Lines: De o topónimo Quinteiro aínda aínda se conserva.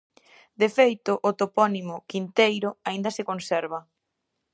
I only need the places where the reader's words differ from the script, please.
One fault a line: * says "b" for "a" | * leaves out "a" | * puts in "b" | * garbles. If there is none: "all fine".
* puts in "feito"
* leaves out "aínda"